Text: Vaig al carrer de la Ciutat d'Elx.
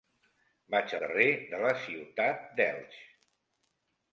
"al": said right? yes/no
no